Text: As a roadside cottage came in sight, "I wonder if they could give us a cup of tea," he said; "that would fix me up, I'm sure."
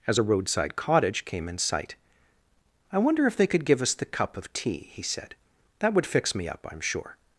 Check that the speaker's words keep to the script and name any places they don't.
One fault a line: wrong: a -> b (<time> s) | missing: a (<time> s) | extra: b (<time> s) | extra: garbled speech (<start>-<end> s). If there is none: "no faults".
wrong: a -> the (3.9 s)